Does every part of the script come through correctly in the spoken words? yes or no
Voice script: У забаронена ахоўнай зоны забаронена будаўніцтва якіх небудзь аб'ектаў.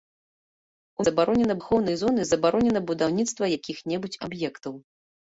yes